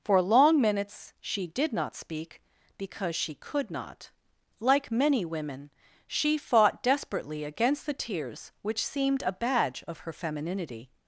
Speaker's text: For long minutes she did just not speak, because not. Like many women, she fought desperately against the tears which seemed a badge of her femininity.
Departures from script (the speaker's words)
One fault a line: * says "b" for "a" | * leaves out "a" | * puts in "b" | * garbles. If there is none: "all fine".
* leaves out "just"
* puts in "she could"